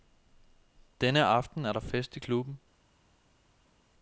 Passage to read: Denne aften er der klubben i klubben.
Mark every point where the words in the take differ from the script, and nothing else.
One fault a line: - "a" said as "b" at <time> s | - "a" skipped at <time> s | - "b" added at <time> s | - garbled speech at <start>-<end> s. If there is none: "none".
- "klubben" said as "fest" at 1.8 s